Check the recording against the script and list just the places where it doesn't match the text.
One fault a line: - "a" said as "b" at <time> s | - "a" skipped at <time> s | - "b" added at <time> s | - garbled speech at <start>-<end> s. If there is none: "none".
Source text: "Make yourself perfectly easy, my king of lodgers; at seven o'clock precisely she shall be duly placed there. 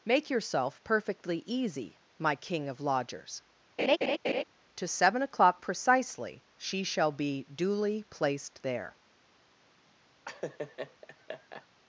- "at" said as "to" at 4.7 s